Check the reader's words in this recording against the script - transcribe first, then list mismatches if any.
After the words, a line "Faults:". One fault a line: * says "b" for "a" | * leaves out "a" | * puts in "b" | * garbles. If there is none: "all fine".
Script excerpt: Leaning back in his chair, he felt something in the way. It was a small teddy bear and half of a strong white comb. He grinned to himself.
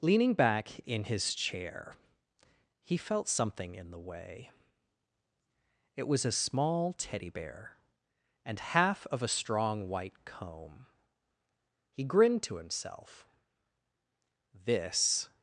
Leaning back in his chair, he felt something in the way. It was a small teddy bear and half of a strong white comb. He grinned to himself. This
Faults:
* puts in "This"